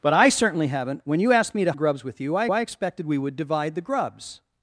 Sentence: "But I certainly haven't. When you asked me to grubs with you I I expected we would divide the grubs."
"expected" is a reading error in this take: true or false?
false